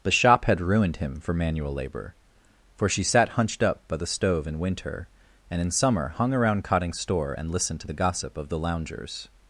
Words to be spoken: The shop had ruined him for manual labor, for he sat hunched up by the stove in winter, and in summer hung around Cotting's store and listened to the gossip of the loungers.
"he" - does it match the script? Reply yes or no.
no